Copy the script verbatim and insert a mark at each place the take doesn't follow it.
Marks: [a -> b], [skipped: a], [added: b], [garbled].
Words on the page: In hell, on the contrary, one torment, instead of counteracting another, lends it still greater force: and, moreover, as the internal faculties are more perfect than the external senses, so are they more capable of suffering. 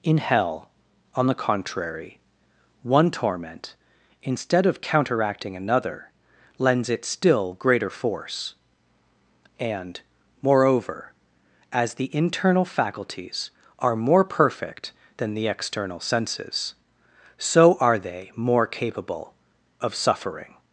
In hell, on the contrary, one torment, instead of counteracting another, lends it still greater force: and, moreover, as the internal faculties are more perfect than the external senses, so are they more capable of suffering.